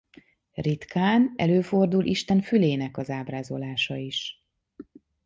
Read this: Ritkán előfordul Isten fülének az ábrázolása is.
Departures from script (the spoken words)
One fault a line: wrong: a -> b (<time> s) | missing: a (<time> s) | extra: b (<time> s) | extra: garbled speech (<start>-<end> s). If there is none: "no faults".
no faults